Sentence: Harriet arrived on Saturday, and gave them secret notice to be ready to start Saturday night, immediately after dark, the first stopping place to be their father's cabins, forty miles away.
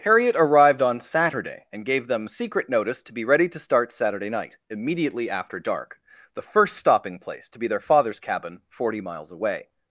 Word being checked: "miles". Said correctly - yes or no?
yes